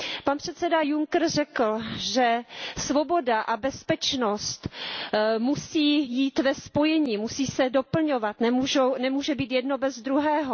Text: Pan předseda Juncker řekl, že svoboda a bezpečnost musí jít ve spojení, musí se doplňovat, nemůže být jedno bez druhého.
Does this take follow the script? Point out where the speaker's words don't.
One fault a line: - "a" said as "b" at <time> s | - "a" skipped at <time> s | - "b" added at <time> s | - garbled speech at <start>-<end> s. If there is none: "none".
none